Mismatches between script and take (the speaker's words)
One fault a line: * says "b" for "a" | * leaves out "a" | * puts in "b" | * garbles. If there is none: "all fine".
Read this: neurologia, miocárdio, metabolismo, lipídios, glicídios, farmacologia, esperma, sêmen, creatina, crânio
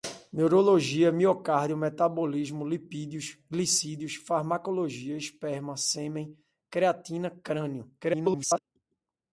* garbles